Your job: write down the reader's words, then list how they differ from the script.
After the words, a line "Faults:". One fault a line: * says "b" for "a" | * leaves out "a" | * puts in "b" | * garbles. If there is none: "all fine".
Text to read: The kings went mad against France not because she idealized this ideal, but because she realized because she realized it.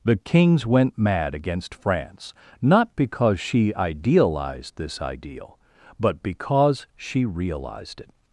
The kings went mad against France not because she idealized this ideal, but because she realized it.
Faults:
* leaves out "because she realized"